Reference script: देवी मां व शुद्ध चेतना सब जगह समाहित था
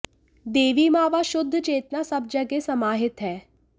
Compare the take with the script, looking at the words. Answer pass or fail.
fail